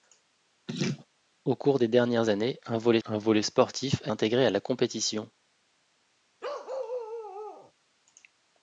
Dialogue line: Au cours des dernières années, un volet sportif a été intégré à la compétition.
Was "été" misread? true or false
true